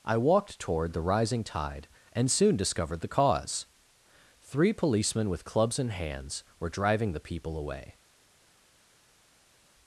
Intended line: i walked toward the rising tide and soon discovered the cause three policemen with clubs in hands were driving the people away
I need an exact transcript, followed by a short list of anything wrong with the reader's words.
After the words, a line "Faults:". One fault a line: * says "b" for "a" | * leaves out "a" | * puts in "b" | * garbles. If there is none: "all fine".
i walked toward the rising tide and soon discovered the cause three policemen with clubs in hands were driving the people away
Faults:
all fine